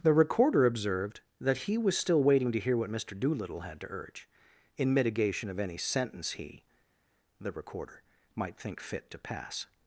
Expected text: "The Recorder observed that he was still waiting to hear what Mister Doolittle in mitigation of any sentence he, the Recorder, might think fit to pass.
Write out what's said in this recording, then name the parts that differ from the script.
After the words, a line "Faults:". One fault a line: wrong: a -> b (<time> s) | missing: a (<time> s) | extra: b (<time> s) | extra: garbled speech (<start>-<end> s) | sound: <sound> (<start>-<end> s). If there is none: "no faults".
"The Recorder observed that he was still waiting to hear what Mister Doolittle had to urge in mitigation of any sentence he, the Recorder, might think fit to pass.
Faults:
extra: had to urge (3.6 s)